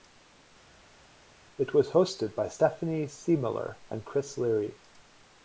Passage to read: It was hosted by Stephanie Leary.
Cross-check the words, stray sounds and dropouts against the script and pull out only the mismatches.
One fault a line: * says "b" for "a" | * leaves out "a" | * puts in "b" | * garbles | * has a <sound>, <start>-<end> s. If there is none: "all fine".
* puts in "Siemiller and Chris"